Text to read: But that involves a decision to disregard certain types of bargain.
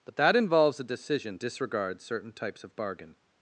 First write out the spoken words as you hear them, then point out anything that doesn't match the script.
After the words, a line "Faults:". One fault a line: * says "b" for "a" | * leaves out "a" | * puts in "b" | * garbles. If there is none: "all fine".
But that involves a decision disregard certain types of bargain.
Faults:
* leaves out "to"